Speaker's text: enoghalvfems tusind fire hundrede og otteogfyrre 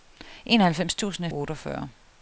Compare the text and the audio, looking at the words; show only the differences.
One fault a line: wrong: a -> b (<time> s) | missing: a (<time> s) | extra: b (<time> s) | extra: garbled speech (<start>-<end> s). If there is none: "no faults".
missing: fire hundrede og (1.2 s)